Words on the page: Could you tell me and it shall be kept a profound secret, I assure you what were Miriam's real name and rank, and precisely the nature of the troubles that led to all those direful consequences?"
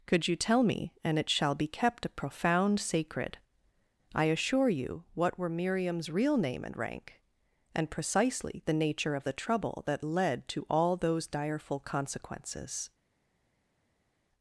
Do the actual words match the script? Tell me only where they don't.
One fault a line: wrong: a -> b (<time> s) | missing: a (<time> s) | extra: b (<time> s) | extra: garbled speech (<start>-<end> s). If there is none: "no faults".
wrong: secret -> sacred (2.8 s)
wrong: troubles -> trouble (9.3 s)